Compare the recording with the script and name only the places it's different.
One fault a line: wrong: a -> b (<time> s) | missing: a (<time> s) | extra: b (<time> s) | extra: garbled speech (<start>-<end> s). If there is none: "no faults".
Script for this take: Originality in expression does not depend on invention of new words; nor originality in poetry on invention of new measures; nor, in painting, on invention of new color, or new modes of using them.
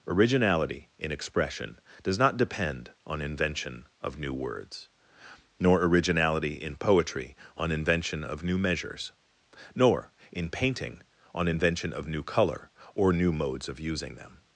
no faults